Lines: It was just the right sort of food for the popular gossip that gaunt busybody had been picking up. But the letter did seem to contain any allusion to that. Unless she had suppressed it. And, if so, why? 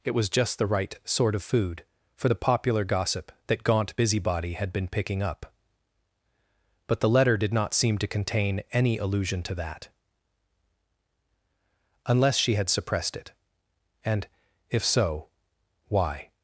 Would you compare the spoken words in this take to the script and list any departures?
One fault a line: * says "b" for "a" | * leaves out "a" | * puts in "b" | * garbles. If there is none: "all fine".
* puts in "not"